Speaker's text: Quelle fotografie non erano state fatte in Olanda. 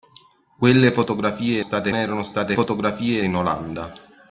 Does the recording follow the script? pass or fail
fail